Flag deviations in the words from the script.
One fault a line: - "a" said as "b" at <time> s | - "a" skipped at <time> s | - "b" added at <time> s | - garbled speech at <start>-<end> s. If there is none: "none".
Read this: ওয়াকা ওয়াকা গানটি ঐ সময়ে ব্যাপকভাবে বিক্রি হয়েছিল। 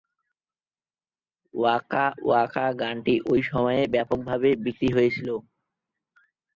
none